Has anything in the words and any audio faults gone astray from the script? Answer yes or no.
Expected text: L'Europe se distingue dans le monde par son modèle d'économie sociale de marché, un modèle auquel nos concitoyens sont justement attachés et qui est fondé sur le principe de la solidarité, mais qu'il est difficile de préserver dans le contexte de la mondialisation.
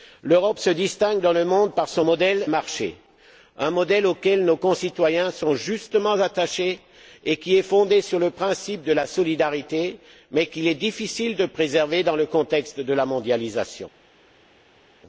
yes